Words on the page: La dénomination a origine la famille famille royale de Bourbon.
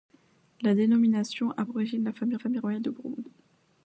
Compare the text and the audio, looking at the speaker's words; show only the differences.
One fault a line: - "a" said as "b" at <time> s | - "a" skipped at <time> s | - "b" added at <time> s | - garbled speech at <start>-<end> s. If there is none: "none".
none